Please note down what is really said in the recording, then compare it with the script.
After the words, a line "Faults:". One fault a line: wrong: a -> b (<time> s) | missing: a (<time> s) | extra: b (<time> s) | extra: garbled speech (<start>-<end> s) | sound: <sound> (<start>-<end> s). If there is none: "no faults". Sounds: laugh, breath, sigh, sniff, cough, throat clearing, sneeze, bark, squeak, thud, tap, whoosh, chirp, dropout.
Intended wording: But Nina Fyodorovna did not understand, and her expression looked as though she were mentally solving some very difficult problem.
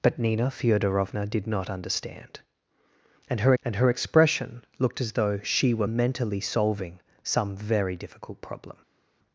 But Nina Fyodorovna did not understand, and her and her expression looked as though she were mentally solving some very difficult problem.
Faults:
extra: and her (3.6 s)